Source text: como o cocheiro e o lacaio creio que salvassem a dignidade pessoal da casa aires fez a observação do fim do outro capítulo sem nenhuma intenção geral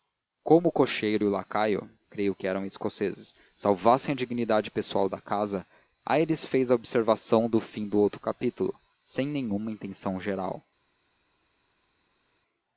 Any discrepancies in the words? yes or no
yes